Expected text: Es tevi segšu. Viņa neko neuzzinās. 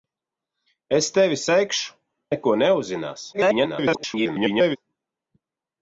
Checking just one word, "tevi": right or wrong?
right